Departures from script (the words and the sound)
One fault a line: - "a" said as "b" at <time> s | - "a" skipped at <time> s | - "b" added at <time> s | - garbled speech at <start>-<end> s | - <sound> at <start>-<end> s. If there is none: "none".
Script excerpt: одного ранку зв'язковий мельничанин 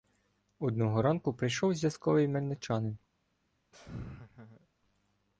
- "прийшов" added at 1.3 s
- laugh at 3.7-4.7 s